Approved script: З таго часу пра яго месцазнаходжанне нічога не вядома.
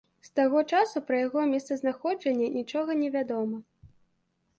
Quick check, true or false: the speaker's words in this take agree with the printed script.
true